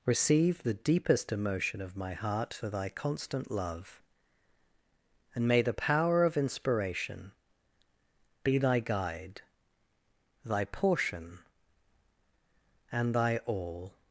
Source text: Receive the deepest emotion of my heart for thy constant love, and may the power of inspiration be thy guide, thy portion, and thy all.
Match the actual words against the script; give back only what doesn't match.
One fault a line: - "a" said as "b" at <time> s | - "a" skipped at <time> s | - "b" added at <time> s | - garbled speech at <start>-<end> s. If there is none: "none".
none